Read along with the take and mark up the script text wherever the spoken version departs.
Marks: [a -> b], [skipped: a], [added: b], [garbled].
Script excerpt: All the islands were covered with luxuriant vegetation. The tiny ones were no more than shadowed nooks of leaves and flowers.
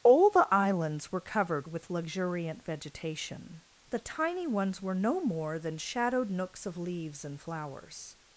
All the islands were covered with luxuriant vegetation. The tiny ones were no more than shadowed nooks of leaves and flowers.